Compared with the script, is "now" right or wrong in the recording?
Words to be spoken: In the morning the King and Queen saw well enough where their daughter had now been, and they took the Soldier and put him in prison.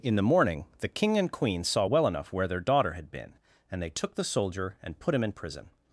wrong